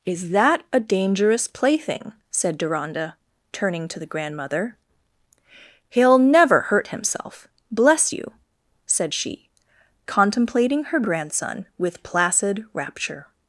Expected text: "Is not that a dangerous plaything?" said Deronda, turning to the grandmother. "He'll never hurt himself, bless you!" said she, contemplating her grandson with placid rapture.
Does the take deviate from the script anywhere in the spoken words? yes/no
yes